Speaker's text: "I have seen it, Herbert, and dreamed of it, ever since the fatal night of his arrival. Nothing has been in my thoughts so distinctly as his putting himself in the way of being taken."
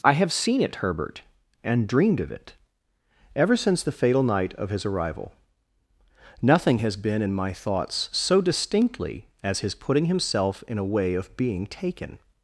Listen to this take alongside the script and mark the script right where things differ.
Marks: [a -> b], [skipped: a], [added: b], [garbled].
"I have seen it, Herbert, and dreamed of it, ever since the fatal night of his arrival. Nothing has been in my thoughts so distinctly as his putting himself in [the -> a] way of being taken."